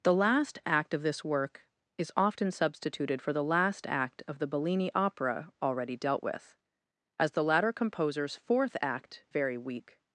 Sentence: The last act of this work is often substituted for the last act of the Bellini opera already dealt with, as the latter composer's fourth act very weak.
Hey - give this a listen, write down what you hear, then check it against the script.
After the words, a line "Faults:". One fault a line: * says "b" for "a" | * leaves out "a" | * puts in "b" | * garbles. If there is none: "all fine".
The last act of this work is often substituted for the last act of the Bellini opera already dealt with, as the latter composer's fourth act very weak.
Faults:
all fine